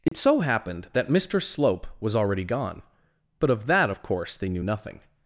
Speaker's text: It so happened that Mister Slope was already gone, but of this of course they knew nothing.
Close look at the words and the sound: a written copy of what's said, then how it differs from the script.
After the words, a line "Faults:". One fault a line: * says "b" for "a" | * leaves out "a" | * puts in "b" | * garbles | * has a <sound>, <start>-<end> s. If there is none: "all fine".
It so happened that Mister Slope was already gone, but of that of course they knew nothing.
Faults:
* has a dropout, 0.1-0.1 s
* says "that" for "this"